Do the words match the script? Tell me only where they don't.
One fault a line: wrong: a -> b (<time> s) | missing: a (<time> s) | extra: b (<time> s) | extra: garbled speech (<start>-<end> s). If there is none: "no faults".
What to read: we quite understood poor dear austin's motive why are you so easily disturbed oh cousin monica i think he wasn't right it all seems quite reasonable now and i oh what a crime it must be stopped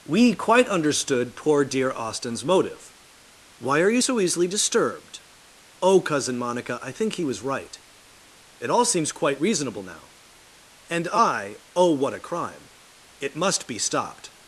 wrong: wasn't -> was (7.2 s)